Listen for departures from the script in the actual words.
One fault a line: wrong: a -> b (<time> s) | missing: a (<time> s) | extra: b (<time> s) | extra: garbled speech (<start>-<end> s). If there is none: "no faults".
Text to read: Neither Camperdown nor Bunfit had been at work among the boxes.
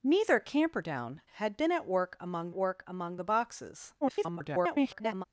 missing: nor Bunfit (1.2 s)
extra: work among (2.5 s)
extra: garbled speech (4.0-5.2 s)